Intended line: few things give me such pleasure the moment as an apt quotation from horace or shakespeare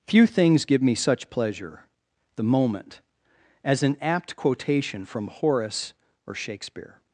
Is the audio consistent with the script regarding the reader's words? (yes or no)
yes